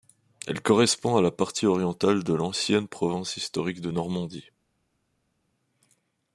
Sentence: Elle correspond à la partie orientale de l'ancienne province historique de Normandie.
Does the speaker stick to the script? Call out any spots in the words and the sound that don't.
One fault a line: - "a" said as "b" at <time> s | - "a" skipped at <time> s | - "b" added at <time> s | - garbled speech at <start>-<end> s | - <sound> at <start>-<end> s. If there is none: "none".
none